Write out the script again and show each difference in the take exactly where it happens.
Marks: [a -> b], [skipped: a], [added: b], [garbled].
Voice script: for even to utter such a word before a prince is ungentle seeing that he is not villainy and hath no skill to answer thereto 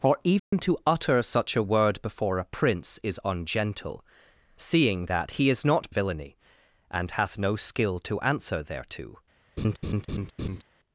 for even to utter such a word before a prince is ungentle seeing that he is not villainy and hath no skill to answer thereto